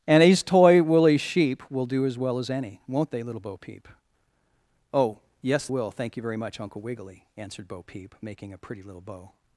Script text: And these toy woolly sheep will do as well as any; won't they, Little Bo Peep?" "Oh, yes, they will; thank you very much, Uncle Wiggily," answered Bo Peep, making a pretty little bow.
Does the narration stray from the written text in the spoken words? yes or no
yes